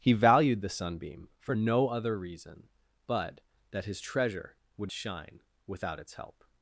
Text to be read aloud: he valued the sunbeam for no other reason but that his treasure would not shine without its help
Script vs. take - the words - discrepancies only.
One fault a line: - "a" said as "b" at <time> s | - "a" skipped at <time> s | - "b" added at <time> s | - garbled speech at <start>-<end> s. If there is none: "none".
- "not" skipped at 4.9 s